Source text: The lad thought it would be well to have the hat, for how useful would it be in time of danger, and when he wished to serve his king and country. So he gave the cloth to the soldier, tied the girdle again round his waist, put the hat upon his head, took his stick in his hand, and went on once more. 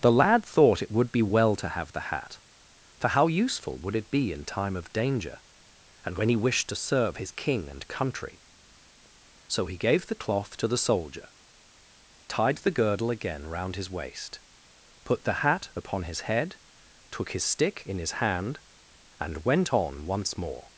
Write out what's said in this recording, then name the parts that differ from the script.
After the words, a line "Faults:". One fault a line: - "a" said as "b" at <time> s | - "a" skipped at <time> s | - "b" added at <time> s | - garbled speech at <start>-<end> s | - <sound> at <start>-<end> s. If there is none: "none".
The lad thought it would be well to have the hat, for how useful would it be in time of danger, and when he wished to serve his king and country. So he gave the cloth to the soldier, tied the girdle again round his waist, put the hat upon his head, took his stick in his hand, and went on once more.
Faults:
none